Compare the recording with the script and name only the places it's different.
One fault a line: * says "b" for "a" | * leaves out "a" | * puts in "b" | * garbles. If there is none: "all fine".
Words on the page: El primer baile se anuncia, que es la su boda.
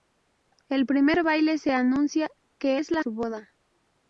all fine